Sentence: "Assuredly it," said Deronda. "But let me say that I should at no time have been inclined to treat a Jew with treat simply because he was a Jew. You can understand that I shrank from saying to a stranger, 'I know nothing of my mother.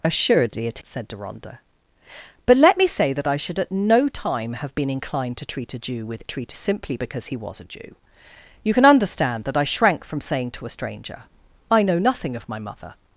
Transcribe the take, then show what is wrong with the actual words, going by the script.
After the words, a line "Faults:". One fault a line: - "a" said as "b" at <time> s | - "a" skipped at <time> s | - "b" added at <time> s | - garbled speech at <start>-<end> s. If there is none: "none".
"Assuredly it," said Deronda. "But let me say that I should at no time have been inclined to treat a Jew with treat simply because he was a Jew. You can understand that I shrank from saying to a stranger, 'I know nothing of my mother.
Faults:
none